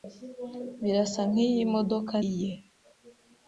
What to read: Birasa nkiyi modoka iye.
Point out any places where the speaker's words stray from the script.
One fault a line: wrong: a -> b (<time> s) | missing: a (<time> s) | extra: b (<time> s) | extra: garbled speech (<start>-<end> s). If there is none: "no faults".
no faults